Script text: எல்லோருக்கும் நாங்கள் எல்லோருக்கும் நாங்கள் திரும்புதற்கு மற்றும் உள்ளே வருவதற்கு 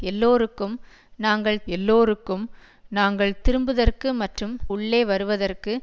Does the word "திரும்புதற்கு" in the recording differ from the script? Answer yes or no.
no